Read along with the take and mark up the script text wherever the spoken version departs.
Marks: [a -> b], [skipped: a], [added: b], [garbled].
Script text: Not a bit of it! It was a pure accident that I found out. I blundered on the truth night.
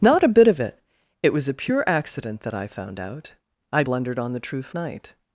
Not a bit of it! It was a pure accident that I found out. I blundered on the truth night.